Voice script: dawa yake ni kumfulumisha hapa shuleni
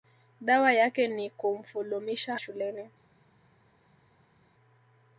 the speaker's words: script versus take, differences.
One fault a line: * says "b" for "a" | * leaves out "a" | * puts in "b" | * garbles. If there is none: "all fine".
* leaves out "hapa"